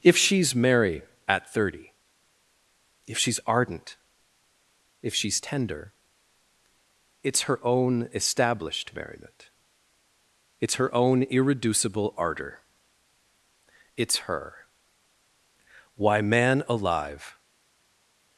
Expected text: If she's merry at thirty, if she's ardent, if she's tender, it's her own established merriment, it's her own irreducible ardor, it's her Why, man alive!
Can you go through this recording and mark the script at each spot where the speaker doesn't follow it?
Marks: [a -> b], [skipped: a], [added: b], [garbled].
If she's merry at thirty, if she's ardent, if she's tender, it's her own established merriment, it's her own irreducible ardor, it's her Why, man alive!